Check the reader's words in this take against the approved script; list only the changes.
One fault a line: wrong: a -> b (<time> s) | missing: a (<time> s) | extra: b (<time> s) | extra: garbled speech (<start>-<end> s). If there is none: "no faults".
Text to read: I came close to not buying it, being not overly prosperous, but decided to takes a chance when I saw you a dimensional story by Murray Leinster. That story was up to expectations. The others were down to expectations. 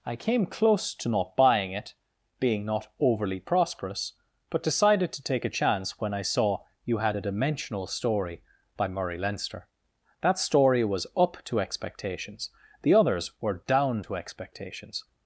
wrong: takes -> take (5.2 s)
extra: had (7.0 s)